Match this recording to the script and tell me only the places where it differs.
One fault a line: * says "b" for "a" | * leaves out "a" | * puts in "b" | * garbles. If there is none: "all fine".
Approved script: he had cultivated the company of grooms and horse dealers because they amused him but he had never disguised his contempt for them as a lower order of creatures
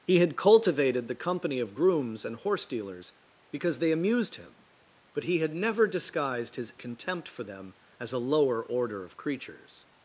all fine